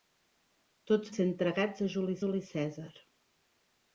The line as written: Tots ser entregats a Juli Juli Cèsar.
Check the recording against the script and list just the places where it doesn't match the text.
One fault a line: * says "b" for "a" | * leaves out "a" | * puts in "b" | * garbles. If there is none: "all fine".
all fine